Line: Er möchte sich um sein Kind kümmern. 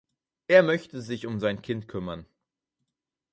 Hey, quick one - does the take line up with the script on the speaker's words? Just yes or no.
yes